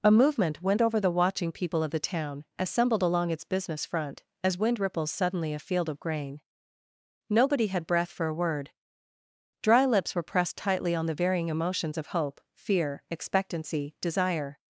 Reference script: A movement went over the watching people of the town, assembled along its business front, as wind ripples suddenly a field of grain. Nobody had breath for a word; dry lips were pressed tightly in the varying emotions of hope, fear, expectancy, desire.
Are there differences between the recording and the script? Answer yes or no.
yes